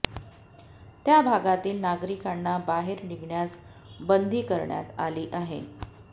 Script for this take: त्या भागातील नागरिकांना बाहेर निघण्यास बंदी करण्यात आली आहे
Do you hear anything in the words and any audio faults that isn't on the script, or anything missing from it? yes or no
no